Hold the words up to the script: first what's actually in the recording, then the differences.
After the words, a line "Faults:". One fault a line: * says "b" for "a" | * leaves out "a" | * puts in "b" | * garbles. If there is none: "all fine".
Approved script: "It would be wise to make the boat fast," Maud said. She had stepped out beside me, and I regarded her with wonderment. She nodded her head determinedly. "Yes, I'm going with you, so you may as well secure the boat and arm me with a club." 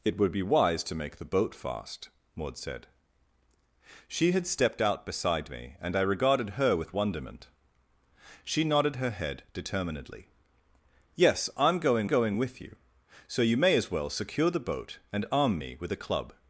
"It would be wise to make the boat fast," Maud said. She had stepped out beside me, and I regarded her with wonderment. She nodded her head determinedly. "Yes, I'm going going with you, so you may as well secure the boat and arm me with a club."
Faults:
* puts in "going"